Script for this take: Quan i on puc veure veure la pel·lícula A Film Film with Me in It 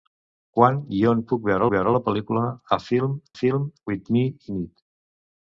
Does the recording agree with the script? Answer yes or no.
yes